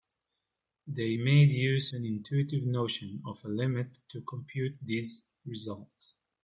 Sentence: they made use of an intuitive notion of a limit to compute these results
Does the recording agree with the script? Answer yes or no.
no